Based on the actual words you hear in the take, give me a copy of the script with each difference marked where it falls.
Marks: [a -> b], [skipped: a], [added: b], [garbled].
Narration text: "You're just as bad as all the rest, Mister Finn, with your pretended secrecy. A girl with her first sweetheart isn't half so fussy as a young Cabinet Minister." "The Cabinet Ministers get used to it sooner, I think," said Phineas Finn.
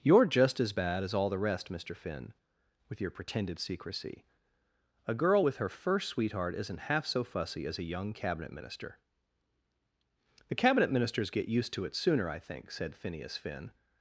"You're just as bad as all the rest, Mister Finn, with your pretended secrecy. A girl with her first sweetheart isn't half so fussy as a young Cabinet Minister." "The Cabinet Ministers get used to it sooner, I think," said Phineas Finn.